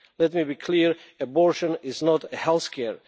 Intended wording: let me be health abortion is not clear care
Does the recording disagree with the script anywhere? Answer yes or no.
yes